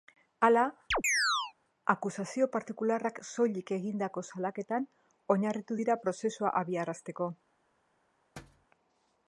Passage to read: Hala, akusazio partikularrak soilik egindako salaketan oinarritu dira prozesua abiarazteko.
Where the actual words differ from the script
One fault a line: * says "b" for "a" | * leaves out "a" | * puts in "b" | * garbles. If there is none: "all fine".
all fine